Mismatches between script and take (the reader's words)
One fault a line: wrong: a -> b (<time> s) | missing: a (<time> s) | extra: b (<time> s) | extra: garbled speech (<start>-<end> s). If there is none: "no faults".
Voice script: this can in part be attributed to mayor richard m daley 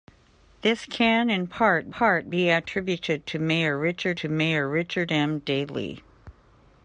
extra: part (1.9 s)
extra: to mayor richard (4.2 s)